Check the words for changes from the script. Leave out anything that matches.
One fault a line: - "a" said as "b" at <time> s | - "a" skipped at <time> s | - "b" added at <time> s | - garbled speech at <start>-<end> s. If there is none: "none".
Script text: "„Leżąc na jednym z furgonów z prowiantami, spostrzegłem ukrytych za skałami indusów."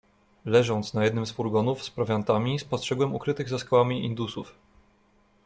none